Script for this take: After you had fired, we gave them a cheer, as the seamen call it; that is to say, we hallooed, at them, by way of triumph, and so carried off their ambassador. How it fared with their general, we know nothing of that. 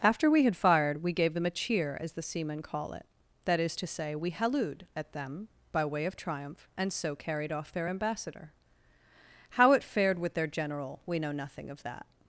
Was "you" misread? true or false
true